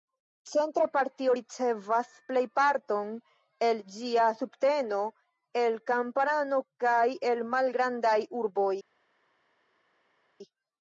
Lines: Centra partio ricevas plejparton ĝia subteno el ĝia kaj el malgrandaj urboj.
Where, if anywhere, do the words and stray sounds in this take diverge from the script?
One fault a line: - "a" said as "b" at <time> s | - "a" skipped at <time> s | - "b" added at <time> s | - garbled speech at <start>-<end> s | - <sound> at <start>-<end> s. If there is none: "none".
- "el" added at 3.7 s
- "ĝia" said as "kamparano" at 6.0 s